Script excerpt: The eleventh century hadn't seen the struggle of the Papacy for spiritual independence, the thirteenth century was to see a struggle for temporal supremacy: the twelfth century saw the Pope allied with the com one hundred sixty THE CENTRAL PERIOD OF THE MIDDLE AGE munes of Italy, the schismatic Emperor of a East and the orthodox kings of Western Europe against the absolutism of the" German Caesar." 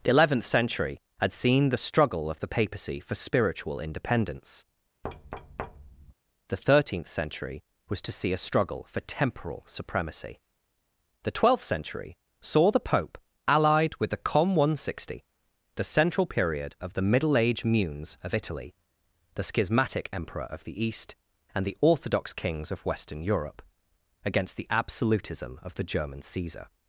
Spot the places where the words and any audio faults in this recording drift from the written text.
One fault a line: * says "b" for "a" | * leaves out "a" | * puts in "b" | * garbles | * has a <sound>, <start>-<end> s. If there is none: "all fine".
* says "had" for "hadn't"
* has a thud, 5.0-6.1 s
* says "the" for "a"